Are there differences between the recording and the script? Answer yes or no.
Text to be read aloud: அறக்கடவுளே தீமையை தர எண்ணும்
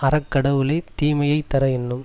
no